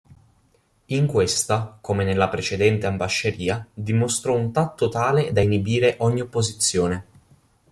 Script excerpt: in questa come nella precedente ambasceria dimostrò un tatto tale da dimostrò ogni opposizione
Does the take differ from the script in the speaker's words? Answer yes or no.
yes